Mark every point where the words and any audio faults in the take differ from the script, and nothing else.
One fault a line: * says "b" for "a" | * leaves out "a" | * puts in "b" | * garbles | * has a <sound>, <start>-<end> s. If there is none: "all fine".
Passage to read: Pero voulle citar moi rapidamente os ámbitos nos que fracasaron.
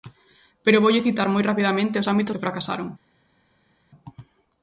* leaves out "nos"